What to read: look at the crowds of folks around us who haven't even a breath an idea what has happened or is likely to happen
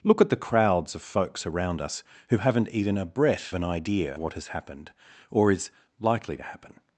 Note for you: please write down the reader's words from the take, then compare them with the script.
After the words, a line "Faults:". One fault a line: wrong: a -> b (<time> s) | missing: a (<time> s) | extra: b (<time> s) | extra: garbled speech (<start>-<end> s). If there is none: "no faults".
look at the crowds of folks around us who haven't even a breath an idea what has happened or is likely to happen
Faults:
no faults